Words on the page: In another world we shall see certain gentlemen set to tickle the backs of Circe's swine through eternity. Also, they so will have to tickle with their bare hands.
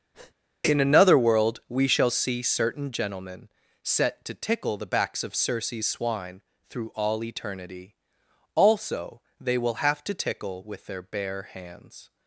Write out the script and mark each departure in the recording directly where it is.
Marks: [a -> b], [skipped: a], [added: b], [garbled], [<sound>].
[breath] In another world we shall see certain gentlemen set to tickle the backs of Circe's swine through [added: all] eternity. Also, they [skipped: so] will have to tickle with their bare hands.